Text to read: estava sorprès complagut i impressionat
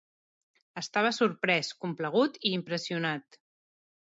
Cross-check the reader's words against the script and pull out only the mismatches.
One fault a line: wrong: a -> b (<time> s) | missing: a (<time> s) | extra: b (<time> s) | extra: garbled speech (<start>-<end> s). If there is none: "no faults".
no faults